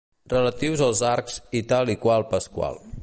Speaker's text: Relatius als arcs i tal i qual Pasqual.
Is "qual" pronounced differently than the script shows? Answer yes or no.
no